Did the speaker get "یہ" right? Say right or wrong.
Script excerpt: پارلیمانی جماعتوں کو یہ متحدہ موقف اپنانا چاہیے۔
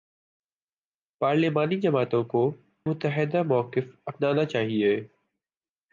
wrong